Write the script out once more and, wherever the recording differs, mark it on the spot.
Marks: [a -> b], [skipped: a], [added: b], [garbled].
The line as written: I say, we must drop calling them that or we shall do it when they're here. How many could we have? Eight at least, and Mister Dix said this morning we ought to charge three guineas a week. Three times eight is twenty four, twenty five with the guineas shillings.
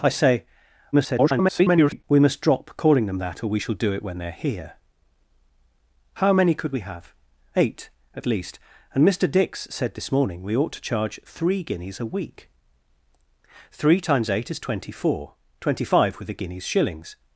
I say, [garbled] we must drop calling them that or we shall do it when they're here. How many could we have? Eight at least, and Mister Dix said this morning we ought to charge three guineas a week. Three times eight is twenty four, twenty five with the guineas shillings.